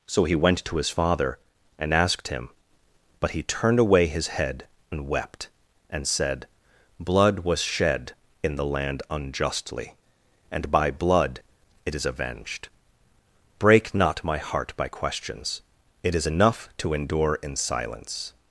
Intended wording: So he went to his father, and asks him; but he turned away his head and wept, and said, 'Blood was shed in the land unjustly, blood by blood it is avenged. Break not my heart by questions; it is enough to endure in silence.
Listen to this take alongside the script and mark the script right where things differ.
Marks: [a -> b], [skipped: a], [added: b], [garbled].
So he went to his father, and [asks -> asked] him; but he turned away his head and wept, and said, 'Blood was shed in the land unjustly, [blood -> and] by blood it is avenged. Break not my heart by questions; it is enough to endure in silence.